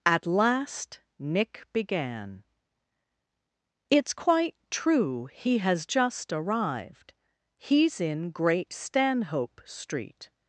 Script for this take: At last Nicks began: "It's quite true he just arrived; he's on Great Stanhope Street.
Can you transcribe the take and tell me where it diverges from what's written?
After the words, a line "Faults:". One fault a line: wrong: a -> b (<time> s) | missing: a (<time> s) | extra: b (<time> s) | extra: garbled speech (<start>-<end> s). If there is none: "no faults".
At last Nick began: "It's quite true he has just arrived; he's in Great Stanhope Street.
Faults:
wrong: Nicks -> Nick (1.2 s)
extra: has (5.6 s)
wrong: on -> in (8.0 s)